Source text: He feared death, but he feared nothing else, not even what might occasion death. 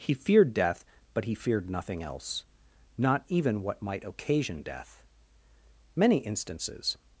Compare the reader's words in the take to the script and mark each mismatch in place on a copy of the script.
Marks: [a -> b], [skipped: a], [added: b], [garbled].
He feared death, but he feared nothing else, not even what might occasion death. [added: Many instances]